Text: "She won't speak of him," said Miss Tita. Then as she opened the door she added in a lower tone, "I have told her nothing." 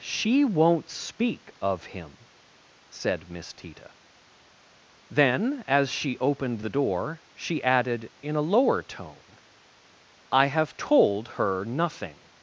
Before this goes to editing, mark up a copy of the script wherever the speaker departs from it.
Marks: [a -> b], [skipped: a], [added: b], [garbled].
"She won't speak of him," said Miss Tita. Then as she opened the door she added in a lower tone, "I have told her nothing."